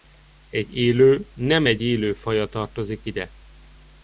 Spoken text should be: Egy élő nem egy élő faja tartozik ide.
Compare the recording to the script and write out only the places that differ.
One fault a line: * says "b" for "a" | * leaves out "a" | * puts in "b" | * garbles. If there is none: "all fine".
all fine